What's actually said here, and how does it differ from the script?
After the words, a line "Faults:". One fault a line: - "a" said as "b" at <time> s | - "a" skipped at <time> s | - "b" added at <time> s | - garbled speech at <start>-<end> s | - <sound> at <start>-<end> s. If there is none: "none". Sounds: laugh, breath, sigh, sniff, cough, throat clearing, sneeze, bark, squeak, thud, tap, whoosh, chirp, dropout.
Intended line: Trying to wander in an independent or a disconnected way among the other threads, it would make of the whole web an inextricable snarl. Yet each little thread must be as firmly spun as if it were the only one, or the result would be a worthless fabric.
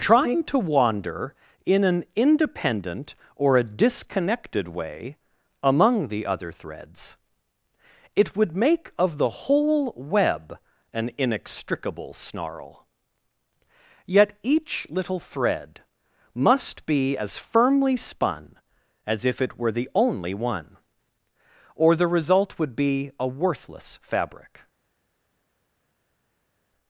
Trying to wander in an independent or a disconnected way among the other threads, it would make of the whole web an inextricable snarl. Yet each little thread must be as firmly spun as if it were the only one, or the result would be a worthless fabric.
Faults:
none